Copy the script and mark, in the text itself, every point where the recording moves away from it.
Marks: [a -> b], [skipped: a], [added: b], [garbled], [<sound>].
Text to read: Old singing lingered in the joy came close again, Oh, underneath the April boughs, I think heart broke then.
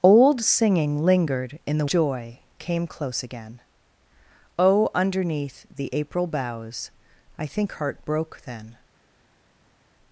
Old singing lingered in the joy came close again, Oh, underneath the April boughs, I think heart broke then.